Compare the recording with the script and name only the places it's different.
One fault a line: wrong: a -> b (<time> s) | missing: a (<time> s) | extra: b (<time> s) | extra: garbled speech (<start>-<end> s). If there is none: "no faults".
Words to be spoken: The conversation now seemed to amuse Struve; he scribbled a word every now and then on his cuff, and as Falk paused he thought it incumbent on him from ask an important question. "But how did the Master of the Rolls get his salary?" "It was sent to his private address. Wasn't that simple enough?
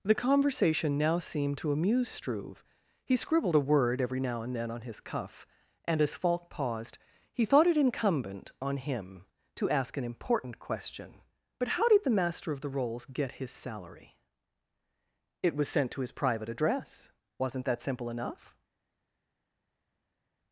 wrong: from -> to (9.5 s)